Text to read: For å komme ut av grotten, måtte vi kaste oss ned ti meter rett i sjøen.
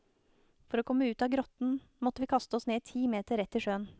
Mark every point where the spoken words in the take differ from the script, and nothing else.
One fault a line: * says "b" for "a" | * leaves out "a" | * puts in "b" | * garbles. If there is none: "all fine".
all fine